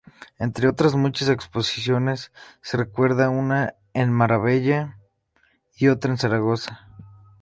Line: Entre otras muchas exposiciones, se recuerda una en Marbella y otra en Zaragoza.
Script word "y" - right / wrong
right